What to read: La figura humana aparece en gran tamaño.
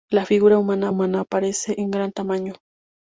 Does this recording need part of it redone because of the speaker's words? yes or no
yes